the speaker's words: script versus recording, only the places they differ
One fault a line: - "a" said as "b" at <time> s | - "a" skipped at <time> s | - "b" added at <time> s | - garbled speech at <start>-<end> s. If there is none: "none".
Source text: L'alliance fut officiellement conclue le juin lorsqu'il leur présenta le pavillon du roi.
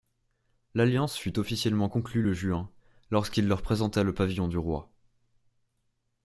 none